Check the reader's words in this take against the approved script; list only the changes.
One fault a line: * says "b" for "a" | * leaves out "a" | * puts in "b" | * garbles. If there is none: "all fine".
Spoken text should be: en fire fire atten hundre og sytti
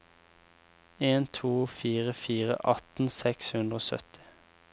* puts in "to"
* puts in "seks"